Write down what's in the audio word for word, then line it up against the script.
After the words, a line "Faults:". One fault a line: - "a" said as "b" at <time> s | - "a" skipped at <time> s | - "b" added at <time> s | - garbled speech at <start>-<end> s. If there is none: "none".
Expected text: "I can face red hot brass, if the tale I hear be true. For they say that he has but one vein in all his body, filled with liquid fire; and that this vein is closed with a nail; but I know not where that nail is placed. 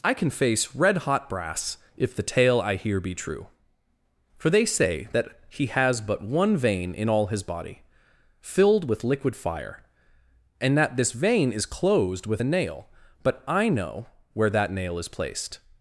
"I can face red hot brass, if the tale I hear be true. For they say that he has but one vein in all his body, filled with liquid fire; and that this vein is closed with a nail; but I know where that nail is placed.
Faults:
- "not" skipped at 14.1 s